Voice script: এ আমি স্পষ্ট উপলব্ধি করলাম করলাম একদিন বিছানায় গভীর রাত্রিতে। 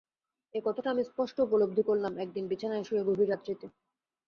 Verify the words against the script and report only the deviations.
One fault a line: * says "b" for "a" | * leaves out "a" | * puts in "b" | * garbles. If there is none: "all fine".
* puts in "কথাটা"
* leaves out "করলাম"
* puts in "শুয়ে"